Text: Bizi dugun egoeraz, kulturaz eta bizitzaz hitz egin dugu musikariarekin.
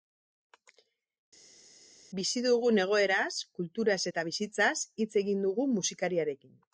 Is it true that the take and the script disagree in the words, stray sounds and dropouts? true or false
false